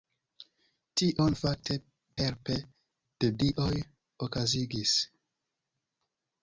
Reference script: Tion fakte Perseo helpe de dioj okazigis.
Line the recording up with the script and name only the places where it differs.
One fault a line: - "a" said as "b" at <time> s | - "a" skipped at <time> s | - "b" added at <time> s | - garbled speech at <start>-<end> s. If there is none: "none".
- "Perseo" skipped at 1.8 s